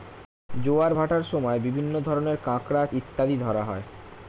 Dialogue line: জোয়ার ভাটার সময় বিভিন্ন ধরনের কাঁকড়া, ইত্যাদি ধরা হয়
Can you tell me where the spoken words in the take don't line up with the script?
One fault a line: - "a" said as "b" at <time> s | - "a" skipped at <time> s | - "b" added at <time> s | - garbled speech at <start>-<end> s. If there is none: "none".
none